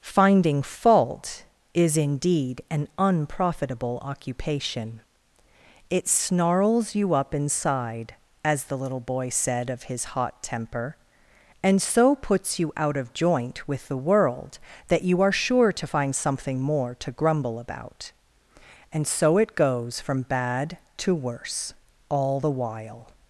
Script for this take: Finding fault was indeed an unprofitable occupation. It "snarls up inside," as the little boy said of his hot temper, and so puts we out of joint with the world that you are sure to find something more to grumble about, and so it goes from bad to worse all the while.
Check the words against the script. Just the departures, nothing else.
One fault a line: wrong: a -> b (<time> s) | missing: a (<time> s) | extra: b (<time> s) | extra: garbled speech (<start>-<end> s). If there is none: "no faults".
wrong: was -> is (1.8 s)
extra: you (7.0 s)
wrong: we -> you (12.6 s)